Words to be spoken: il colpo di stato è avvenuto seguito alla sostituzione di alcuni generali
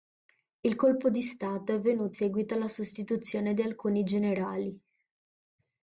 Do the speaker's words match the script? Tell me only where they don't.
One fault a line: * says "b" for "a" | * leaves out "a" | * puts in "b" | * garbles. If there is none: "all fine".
all fine